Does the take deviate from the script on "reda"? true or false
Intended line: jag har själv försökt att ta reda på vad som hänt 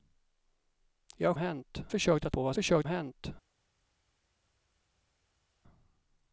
true